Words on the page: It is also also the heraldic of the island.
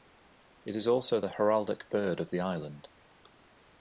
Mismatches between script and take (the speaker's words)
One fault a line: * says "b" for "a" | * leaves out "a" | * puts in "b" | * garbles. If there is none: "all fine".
* leaves out "also"
* puts in "bird"